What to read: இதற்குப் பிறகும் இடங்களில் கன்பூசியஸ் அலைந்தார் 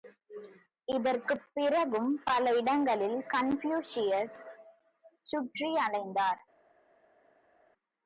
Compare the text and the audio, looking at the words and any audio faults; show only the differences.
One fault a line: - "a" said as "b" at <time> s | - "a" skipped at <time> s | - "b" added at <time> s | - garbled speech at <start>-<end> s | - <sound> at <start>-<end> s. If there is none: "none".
- "பல" added at 2.2 s
- "சுற்றி" added at 5.2 s